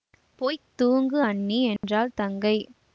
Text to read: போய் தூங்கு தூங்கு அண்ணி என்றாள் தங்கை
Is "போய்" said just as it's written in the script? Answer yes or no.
yes